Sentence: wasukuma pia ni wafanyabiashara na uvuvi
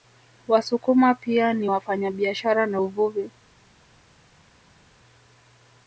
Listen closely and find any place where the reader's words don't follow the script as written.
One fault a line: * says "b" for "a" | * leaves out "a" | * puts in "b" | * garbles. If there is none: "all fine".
all fine